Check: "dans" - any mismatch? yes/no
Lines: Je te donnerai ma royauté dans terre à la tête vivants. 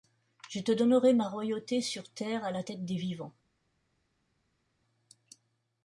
yes